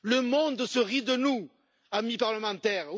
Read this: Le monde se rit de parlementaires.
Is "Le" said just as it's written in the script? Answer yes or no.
yes